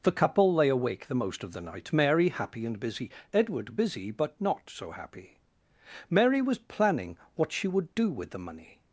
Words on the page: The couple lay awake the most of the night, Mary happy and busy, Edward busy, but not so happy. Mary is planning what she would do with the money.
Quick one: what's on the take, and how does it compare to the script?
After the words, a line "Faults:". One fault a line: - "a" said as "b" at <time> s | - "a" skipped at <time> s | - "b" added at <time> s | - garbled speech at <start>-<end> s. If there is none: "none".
The couple lay awake the most of the night, Mary happy and busy, Edward busy, but not so happy. Mary was planning what she would do with the money.
Faults:
- "is" said as "was" at 6.4 s